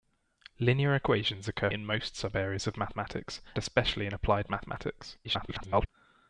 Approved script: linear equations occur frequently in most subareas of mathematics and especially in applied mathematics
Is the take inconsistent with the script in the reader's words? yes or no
yes